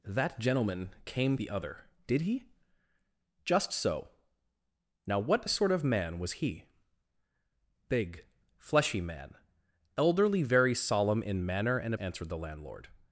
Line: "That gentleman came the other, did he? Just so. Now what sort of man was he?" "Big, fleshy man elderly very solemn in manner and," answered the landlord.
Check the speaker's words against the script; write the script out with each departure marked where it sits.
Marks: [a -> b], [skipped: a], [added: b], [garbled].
"That gentleman came the other, did he? Just so. Now what sort of man was he?" "Big, fleshy man elderly very solemn in manner and," answered the landlord.